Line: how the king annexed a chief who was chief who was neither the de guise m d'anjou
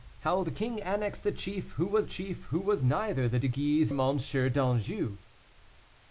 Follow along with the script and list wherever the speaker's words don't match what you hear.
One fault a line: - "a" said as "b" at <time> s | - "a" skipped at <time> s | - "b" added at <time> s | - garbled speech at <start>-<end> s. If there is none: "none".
none